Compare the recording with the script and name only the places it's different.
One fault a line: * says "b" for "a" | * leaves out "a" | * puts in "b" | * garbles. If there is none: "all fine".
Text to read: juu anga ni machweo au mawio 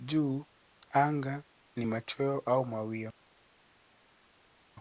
all fine